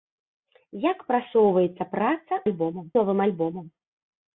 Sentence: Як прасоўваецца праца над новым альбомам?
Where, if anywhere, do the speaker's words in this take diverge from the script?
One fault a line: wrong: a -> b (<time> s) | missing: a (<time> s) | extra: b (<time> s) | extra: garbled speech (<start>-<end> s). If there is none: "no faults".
wrong: над -> альбомам (2.5 s)